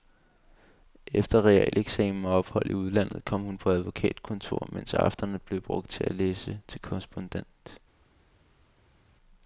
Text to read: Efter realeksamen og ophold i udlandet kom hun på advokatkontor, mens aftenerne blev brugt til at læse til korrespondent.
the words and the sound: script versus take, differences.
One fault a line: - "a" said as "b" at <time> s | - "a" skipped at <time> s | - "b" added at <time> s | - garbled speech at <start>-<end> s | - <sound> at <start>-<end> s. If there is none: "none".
none